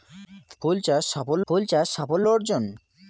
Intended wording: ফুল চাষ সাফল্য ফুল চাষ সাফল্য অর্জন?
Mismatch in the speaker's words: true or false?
false